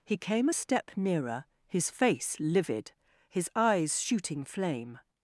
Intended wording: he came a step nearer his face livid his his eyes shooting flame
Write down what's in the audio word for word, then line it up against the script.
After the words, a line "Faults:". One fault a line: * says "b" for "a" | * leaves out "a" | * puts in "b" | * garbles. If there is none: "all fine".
he came a step nearer his face livid his eyes shooting flame
Faults:
* leaves out "his"